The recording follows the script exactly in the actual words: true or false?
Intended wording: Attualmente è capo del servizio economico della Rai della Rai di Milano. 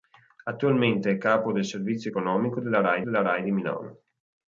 true